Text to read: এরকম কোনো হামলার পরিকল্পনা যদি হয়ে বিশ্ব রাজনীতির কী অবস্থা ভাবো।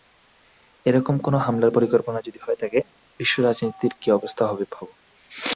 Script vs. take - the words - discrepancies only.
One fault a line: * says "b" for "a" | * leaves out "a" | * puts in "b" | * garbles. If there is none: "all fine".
* puts in "থাকে"
* puts in "হবে"